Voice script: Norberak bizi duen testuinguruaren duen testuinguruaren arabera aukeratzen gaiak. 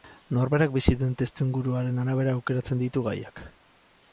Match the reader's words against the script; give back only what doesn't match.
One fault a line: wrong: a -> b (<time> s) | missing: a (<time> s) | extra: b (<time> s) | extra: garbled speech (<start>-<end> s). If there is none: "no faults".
missing: duen testuinguruaren (2.0 s)
extra: ditu (2.9 s)